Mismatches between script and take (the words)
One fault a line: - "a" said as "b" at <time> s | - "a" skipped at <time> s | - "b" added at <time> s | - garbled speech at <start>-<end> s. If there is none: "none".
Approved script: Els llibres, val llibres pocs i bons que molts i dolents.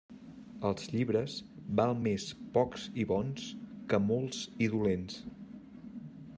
- "llibres" said as "més" at 2.0 s